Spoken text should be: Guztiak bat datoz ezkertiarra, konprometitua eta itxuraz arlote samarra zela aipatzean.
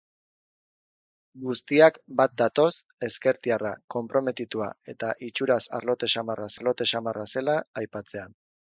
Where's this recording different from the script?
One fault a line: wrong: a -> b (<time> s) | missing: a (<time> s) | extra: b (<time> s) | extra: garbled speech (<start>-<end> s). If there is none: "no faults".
extra: arlote samarra (6.6 s)